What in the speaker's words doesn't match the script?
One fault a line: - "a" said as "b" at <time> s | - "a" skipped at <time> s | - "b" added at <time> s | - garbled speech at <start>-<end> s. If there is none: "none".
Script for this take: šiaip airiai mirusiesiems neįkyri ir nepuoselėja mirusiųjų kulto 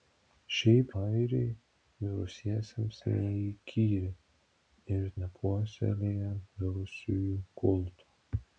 none